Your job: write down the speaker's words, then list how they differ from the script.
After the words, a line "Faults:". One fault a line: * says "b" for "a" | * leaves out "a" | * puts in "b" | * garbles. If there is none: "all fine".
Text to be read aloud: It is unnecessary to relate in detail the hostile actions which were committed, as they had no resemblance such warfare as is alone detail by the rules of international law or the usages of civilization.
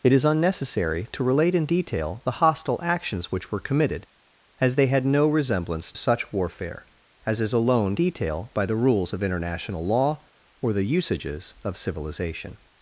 It is unnecessary to relate in detail the hostile actions which were committed, as they had no resemblance such warfare as is alone detail by the rules of international law or the usages of civilization.
Faults:
all fine